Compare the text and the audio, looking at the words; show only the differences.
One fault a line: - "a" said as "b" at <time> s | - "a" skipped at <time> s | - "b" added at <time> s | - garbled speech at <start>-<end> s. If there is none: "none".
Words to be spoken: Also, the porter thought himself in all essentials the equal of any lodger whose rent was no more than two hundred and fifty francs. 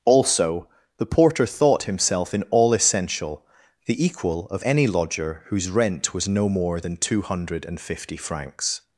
- "essentials" said as "essential" at 2.7 s